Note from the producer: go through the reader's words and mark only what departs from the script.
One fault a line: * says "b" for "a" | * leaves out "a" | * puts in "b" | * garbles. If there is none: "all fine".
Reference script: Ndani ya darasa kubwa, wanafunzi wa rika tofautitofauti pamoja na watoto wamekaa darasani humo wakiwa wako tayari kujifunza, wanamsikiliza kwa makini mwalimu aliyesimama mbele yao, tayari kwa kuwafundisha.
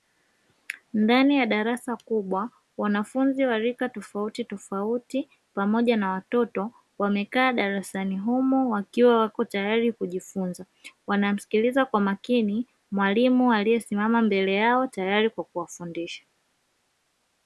all fine